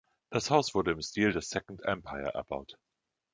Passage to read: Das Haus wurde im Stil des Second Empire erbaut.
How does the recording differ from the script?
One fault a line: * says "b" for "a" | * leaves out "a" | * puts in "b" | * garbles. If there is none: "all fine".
all fine